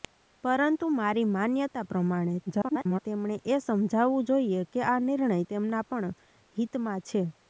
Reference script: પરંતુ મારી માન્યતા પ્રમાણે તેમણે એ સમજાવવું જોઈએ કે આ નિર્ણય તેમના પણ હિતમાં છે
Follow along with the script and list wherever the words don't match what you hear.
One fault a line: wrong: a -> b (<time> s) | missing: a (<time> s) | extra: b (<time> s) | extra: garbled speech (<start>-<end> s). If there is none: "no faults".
extra: garbled speech (2.5-3.0 s)